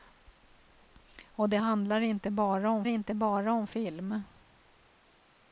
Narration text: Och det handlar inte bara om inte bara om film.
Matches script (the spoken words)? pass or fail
pass